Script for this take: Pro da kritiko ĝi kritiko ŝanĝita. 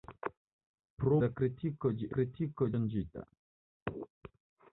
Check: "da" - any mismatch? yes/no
no